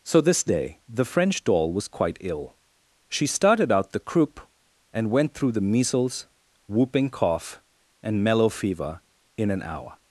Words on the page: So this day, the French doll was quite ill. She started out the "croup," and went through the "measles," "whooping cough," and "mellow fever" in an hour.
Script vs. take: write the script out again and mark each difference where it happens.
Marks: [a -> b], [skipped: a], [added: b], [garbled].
So this day, the French doll was quite ill. She started out the "croup," and went through the "measles," "whooping cough," and "mellow fever" in an hour.